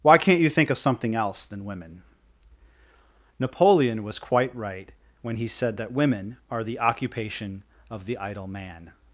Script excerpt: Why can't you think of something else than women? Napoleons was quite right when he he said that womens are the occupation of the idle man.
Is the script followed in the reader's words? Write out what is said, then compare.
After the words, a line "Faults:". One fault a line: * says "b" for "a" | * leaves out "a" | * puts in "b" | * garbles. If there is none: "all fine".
Why can't you think of something else than women? Napoleon was quite right when he said that women are the occupation of the idle man.
Faults:
* says "Napoleon" for "Napoleons"
* leaves out "he"
* says "women" for "womens"